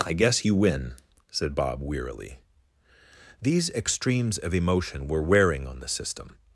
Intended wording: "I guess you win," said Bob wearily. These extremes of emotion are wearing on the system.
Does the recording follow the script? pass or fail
fail